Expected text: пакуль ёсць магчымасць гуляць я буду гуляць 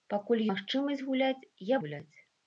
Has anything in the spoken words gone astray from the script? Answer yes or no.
yes